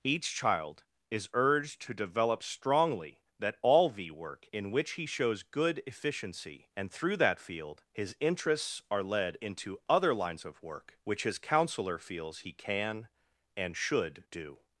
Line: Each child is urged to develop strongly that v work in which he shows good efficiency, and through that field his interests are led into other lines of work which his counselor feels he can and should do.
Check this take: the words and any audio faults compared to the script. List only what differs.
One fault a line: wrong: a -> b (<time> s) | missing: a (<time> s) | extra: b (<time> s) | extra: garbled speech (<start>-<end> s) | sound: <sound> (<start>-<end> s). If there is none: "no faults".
extra: all (3.6 s)